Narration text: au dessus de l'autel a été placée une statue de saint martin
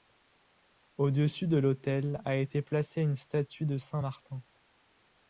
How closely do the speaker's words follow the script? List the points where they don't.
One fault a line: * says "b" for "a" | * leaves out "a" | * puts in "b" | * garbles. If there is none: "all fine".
all fine